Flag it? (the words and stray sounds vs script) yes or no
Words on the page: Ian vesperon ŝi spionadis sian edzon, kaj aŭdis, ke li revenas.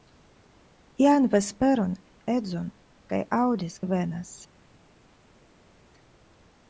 yes